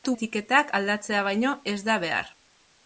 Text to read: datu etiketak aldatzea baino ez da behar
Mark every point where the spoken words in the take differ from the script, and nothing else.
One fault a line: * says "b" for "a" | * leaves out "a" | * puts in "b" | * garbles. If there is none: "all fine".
all fine